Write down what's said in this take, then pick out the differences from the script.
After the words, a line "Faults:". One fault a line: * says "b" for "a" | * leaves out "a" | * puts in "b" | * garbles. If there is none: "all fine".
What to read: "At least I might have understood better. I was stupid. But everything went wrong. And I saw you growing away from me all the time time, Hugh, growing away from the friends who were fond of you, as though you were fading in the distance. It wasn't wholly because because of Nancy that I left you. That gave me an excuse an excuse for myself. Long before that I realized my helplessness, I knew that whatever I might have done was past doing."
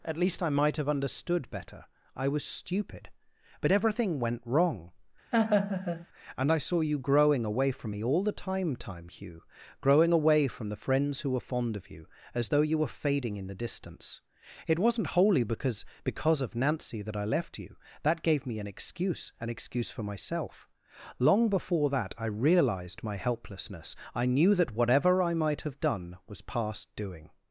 "At least I might have understood better. I was stupid. But everything went wrong. And I saw you growing away from me all the time time, Hugh, growing away from the friends who were fond of you, as though you were fading in the distance. It wasn't wholly because because of Nancy that I left you. That gave me an excuse an excuse for myself. Long before that I realized my helplessness, I knew that whatever I might have done was past doing."
Faults:
all fine